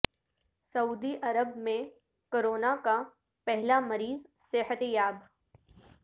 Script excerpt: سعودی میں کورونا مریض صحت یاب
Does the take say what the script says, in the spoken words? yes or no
no